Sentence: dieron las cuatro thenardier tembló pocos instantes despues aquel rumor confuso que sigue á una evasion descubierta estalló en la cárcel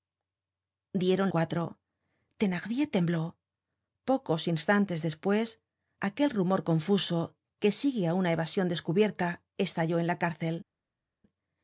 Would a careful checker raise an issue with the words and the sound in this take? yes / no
yes